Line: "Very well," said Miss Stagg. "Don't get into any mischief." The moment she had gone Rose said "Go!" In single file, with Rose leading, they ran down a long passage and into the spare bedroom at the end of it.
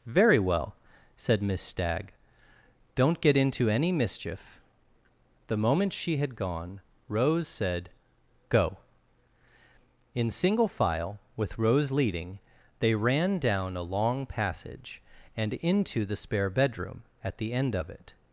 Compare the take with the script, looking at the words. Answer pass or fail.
pass